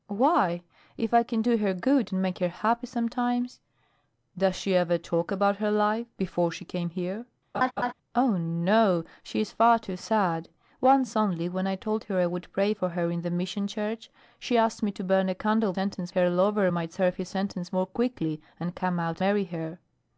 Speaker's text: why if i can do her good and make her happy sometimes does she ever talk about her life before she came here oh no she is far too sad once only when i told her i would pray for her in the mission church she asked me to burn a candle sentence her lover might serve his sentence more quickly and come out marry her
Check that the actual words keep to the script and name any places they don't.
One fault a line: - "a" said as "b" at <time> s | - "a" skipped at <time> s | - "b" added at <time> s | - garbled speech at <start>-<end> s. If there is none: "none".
none